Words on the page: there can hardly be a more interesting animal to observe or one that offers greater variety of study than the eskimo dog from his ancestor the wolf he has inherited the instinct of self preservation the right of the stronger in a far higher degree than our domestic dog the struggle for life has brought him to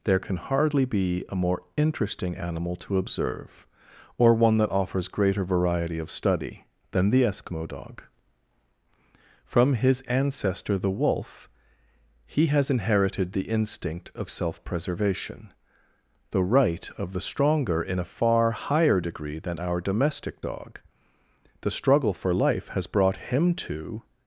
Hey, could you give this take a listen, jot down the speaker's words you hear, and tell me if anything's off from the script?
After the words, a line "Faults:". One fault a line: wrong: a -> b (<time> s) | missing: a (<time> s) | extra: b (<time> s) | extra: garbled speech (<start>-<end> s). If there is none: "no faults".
there can hardly be a more interesting animal to observe or one that offers greater variety of study than the eskimo dog from his ancestor the wolf he has inherited the instinct of self preservation the right of the stronger in a far higher degree than our domestic dog the struggle for life has brought him to
Faults:
no faults